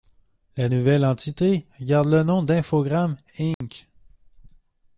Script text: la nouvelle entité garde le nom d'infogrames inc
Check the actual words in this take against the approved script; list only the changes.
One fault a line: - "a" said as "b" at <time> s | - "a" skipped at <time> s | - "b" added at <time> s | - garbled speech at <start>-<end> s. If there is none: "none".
none